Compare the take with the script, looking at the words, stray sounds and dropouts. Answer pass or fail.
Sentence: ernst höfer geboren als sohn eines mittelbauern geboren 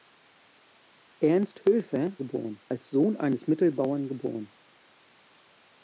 pass